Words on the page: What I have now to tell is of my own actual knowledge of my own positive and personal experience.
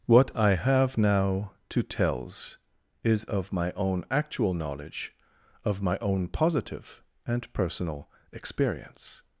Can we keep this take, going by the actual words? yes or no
no